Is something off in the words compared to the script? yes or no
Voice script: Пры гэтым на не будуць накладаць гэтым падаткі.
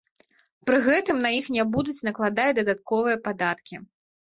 yes